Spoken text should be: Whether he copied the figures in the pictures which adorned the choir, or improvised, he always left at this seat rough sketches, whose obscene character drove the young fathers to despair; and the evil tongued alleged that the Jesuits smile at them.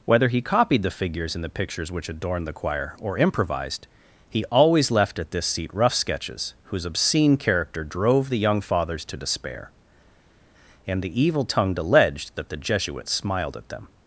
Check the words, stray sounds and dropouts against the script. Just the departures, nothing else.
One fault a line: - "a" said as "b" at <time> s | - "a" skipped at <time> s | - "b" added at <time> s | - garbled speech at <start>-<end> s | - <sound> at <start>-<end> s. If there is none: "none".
- "smile" said as "smiled" at 13.1 s